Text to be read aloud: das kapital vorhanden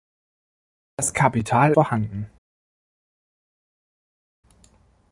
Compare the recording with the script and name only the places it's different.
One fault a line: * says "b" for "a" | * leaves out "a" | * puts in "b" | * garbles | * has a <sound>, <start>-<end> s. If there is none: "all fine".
all fine